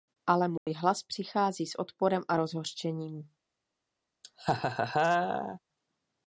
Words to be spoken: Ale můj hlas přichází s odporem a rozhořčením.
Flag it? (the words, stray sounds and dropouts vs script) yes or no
yes